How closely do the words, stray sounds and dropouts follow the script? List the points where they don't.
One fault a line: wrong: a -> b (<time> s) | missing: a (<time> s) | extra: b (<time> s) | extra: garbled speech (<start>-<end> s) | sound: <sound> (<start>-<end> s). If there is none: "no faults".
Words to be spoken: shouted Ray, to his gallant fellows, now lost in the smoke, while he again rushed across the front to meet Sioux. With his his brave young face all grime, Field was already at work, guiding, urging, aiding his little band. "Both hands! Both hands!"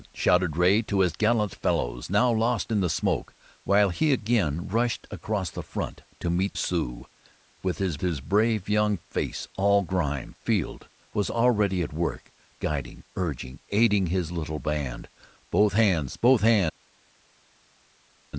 no faults